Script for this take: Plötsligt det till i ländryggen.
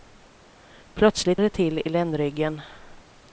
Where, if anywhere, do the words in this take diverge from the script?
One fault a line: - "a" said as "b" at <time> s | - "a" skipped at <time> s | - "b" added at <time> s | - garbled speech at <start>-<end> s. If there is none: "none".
none